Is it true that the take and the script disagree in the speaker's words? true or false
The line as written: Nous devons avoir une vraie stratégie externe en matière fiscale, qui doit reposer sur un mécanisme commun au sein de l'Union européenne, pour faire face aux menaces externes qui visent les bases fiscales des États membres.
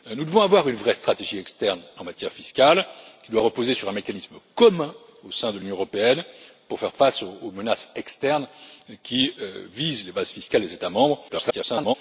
true